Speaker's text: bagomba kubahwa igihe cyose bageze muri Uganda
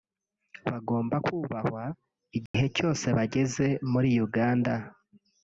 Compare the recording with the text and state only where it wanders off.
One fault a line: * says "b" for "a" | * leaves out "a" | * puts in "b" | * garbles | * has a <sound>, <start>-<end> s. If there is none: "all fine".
* has a dropout, 2.5-2.5 s